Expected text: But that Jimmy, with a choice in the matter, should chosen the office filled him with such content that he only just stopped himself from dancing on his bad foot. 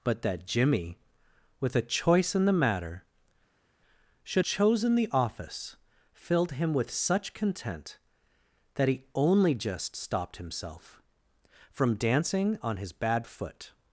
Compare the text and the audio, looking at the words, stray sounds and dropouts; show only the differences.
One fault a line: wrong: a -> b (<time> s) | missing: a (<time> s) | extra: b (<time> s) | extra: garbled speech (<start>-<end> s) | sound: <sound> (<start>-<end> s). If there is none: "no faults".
no faults